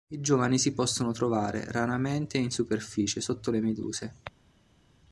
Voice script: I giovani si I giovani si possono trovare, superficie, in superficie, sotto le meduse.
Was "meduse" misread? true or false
false